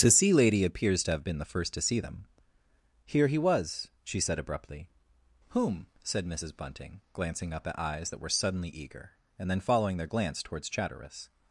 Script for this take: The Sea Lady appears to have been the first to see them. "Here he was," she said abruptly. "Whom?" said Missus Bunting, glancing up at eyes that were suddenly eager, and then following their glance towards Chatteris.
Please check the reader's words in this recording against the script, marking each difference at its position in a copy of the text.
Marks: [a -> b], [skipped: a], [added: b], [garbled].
The Sea Lady appears to have been the first to see them. "Here he was," she said abruptly. "Whom?" said Missus Bunting, glancing up at eyes that were suddenly eager, and then following their glance towards Chatteris.